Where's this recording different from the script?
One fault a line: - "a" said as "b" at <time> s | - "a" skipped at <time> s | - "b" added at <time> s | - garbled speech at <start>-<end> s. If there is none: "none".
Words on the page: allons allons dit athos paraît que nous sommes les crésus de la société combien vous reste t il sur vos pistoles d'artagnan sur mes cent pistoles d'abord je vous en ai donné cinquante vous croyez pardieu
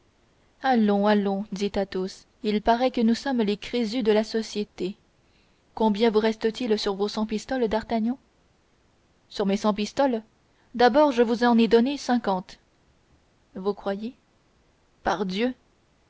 - "il" added at 2.4 s
- "cent" added at 7.1 s